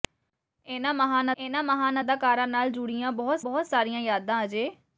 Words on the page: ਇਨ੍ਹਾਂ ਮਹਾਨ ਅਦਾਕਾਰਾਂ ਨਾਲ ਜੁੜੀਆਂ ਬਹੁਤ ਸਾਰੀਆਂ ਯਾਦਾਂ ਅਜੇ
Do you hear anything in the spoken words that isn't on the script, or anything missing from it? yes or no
yes